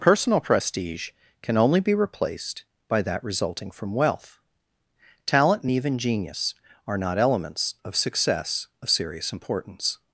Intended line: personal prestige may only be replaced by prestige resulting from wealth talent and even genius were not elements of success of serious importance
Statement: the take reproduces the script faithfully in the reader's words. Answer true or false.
false